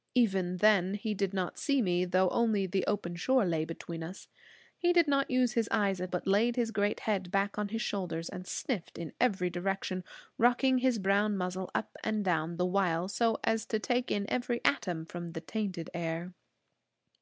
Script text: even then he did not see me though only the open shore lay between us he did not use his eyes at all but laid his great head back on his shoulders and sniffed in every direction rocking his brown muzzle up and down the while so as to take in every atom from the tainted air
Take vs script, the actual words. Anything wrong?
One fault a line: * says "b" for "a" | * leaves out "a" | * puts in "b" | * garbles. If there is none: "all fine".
* leaves out "all"